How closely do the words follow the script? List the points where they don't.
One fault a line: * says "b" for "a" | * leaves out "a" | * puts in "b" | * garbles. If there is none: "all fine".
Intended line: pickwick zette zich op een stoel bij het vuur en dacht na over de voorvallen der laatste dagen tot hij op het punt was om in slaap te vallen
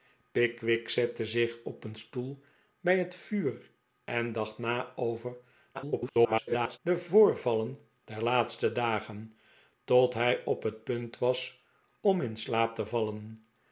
* garbles